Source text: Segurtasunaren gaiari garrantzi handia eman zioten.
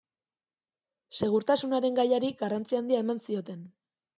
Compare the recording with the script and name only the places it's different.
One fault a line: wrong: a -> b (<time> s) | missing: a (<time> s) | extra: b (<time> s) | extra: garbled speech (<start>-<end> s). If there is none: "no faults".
no faults